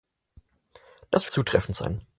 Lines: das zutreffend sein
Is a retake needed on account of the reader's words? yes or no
no